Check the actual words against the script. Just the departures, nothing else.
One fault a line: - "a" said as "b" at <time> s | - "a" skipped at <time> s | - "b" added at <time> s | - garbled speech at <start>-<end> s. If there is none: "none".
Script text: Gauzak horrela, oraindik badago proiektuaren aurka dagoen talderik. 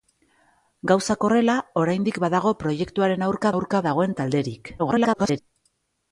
- "aurka" added at 3.5 s
- garbled speech at 4.8-5.4 s